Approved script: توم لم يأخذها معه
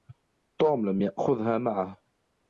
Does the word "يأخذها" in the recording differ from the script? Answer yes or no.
no